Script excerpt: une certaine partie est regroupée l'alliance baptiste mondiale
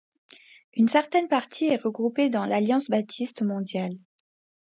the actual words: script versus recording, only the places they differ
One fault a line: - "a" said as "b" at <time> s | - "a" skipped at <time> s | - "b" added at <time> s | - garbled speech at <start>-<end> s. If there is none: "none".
- "dans" added at 2.3 s